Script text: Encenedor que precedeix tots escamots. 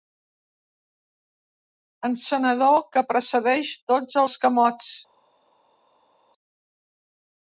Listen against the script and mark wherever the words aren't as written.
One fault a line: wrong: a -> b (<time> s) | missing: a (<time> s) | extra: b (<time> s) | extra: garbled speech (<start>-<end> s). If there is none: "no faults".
no faults